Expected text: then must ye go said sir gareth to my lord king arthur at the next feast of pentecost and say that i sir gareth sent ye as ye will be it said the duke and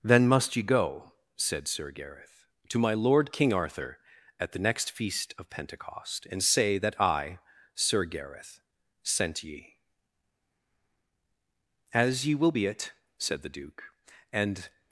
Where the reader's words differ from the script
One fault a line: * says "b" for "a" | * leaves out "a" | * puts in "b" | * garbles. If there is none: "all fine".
all fine